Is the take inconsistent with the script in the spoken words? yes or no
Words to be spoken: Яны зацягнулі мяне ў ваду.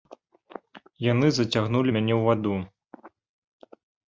no